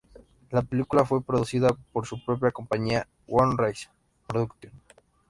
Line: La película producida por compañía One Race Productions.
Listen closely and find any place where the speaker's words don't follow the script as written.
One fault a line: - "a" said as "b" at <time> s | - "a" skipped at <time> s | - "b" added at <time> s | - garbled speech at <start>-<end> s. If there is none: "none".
- "fue" added at 1.1 s
- "su propia" added at 2.1 s